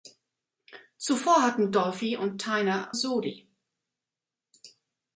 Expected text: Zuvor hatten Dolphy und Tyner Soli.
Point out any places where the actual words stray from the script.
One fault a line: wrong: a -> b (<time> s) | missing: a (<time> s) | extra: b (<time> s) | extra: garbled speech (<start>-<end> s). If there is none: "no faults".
no faults